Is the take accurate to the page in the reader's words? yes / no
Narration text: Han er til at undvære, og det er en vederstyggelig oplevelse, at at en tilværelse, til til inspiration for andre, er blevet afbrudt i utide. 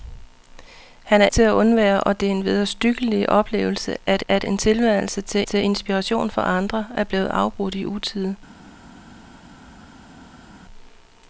yes